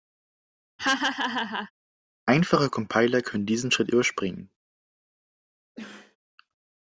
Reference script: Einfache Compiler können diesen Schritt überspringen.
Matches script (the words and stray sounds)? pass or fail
fail